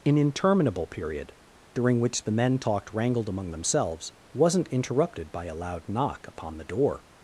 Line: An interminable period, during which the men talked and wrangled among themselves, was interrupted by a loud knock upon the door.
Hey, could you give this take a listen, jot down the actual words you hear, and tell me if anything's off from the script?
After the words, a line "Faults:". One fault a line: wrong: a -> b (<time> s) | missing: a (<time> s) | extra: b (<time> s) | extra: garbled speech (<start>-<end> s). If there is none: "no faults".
An interminable period, during which the men talked wrangled among themselves, wasn't interrupted by a loud knock upon the door.
Faults:
missing: and (2.9 s)
wrong: was -> wasn't (4.3 s)